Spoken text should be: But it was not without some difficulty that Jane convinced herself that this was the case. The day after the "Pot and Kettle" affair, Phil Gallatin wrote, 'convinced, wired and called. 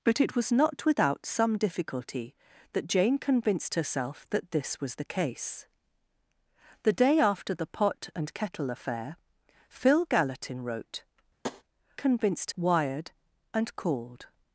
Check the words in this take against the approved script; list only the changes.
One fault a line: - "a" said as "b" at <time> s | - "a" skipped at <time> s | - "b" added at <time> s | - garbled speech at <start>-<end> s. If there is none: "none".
none